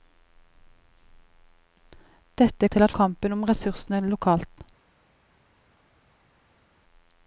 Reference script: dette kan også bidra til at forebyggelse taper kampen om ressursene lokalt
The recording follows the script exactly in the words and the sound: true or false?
false